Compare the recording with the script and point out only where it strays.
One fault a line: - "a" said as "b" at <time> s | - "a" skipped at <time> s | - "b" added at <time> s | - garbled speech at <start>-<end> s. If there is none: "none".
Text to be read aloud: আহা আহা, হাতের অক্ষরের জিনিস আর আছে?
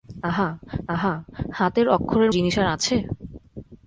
none